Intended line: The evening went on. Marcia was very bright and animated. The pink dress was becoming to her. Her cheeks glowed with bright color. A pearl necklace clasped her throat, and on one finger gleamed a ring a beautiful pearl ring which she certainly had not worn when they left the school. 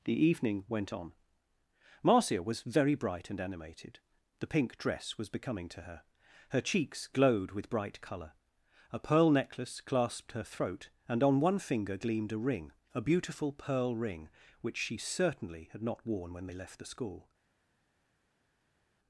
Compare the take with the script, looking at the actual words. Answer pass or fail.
pass